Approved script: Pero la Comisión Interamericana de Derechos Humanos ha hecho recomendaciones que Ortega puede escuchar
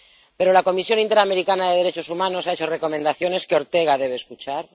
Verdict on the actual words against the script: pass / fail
fail